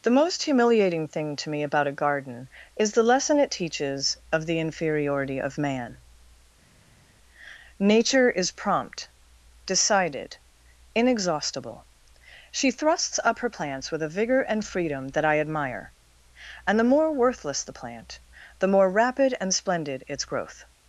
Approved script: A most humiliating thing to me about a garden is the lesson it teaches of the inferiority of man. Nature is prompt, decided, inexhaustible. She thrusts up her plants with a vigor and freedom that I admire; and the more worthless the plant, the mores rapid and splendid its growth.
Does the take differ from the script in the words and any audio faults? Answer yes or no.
yes